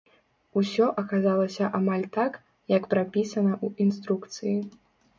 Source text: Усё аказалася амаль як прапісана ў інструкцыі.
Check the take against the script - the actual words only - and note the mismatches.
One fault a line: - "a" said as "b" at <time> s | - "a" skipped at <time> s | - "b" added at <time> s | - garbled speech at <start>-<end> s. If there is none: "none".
- "так" added at 2.2 s